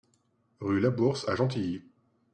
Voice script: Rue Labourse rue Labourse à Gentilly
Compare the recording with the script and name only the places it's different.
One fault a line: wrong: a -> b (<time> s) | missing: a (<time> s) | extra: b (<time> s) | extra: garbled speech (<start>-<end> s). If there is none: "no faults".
missing: rue Labourse (1.3 s)